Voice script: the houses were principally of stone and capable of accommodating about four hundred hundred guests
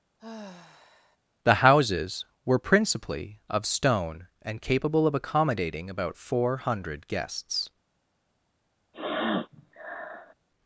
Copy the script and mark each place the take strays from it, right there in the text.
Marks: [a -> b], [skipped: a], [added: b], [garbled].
the houses were principally of stone and capable of accommodating about four hundred [skipped: hundred] guests